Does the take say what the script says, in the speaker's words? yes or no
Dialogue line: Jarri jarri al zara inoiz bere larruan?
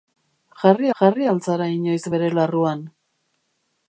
yes